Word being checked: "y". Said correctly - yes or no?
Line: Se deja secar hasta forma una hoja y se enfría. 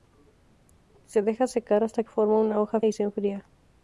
yes